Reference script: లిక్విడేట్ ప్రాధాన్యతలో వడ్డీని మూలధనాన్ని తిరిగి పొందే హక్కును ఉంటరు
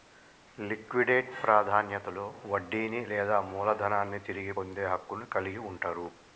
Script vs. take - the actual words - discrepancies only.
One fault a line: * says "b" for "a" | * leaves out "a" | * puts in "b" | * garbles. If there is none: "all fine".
* puts in "లేదా"
* puts in "కలిగి"